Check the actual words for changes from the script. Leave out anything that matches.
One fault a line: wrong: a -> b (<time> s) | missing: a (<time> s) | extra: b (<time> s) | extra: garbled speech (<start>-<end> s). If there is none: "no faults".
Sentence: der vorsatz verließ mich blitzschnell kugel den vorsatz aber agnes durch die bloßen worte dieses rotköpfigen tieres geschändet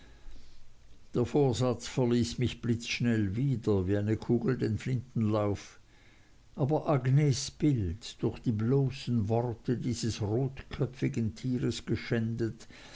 extra: wieder wie eine (3.4 s)
wrong: vorsatz -> flintenlauf (4.8 s)
extra: bild (7.5 s)